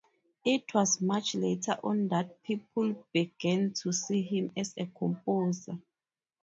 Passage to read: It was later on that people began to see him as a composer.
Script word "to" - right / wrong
right